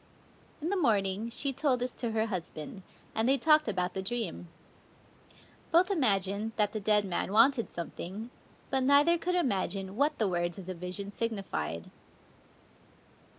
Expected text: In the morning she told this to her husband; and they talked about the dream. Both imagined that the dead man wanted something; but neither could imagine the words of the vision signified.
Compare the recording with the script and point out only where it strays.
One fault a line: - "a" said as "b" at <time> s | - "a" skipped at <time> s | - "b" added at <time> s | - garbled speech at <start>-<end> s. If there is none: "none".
- "what" added at 10.0 s